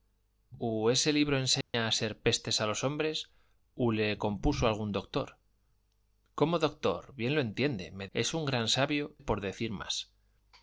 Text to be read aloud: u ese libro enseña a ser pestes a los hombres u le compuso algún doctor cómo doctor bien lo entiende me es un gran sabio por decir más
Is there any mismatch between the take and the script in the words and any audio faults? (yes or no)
yes